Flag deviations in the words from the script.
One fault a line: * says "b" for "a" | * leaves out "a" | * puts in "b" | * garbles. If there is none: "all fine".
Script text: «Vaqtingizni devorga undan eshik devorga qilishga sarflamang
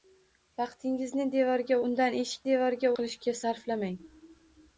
all fine